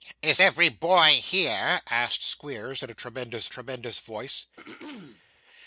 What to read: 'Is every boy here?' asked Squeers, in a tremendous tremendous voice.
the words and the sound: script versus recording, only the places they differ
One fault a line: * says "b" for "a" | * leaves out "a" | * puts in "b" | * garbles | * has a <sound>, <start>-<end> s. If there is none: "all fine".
* has a throat clearing, 4.6-5.2 s